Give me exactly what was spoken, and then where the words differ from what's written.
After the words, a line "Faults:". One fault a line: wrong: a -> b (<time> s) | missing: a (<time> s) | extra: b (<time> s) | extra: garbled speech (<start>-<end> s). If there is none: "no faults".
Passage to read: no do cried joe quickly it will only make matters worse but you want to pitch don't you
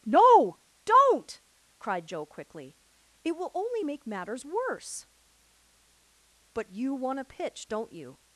no don't cried joe quickly it will only make matters worse but you want to pitch don't you
Faults:
wrong: do -> don't (0.8 s)